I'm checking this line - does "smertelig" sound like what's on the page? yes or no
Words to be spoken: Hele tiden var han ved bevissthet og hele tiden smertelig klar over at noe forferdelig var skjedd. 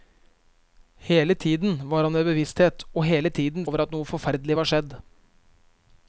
no